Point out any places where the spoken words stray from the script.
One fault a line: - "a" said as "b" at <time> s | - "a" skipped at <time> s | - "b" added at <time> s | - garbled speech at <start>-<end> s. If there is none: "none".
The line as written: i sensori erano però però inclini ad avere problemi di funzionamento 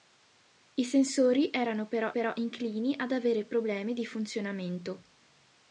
none